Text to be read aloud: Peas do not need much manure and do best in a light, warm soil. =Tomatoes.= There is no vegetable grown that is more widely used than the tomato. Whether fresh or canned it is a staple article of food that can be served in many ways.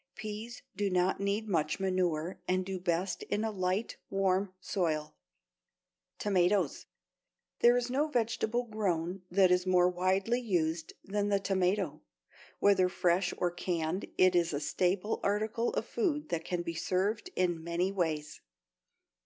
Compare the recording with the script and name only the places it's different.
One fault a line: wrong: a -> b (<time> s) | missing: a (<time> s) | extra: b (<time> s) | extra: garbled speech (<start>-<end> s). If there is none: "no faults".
no faults